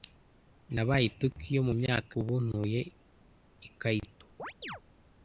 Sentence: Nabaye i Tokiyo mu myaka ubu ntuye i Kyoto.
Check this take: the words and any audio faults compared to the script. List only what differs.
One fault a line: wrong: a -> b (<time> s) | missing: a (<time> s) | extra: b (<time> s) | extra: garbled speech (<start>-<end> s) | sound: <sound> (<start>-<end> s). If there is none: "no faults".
sound: chirp (4.4-4.8 s)